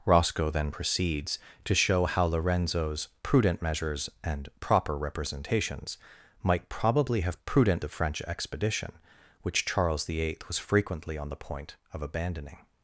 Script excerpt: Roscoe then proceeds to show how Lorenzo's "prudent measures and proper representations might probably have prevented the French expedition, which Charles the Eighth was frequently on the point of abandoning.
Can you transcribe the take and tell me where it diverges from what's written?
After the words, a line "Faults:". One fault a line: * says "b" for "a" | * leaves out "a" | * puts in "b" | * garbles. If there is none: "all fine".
Roscoe then proceeds to show how Lorenzo's "prudent measures and proper representations might probably have prudent the French expedition, which Charles the Eighth was frequently on the point of abandoning.
Faults:
* says "prudent" for "prevented"